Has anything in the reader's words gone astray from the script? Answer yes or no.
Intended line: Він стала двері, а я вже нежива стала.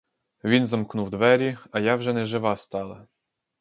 yes